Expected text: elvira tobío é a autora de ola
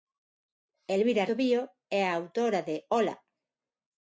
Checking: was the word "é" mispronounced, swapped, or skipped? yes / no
no